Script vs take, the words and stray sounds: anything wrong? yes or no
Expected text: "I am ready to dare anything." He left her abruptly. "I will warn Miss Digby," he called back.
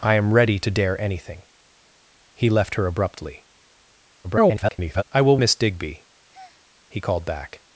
yes